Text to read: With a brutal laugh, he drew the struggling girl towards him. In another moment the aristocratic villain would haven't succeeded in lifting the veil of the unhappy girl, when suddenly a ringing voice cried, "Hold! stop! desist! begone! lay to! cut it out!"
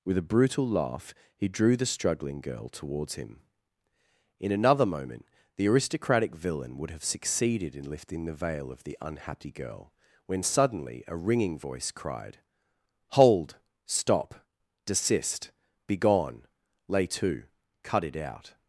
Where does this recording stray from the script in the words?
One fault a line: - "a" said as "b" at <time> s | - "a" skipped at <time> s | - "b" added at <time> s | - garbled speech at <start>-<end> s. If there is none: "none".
- "haven't" said as "have" at 6.9 s